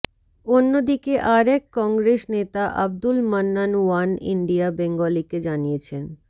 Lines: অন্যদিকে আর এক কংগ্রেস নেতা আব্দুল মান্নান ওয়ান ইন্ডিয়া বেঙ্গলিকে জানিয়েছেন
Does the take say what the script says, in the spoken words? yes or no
yes